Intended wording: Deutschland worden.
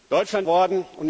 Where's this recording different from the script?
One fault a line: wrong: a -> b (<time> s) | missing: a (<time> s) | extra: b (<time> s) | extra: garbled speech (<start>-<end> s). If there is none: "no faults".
no faults